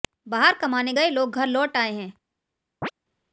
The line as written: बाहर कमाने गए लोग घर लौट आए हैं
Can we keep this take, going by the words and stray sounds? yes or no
no